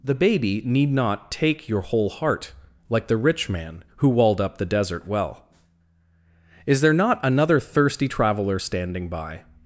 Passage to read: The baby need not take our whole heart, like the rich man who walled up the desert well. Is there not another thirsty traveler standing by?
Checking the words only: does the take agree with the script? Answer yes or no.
no